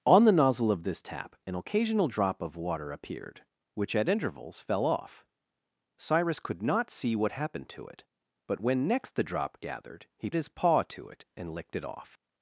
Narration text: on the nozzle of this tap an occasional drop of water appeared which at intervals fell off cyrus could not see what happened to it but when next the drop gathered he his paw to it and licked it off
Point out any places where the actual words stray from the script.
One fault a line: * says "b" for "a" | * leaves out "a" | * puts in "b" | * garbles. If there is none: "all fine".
all fine